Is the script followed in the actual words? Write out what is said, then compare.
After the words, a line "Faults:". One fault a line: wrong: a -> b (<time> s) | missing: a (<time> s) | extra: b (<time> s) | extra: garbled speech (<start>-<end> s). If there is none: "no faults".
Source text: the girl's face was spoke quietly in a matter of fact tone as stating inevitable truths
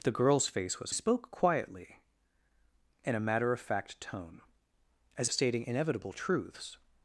the girl's face was spoke quietly in a matter of fact tone as stating inevitable truths
Faults:
no faults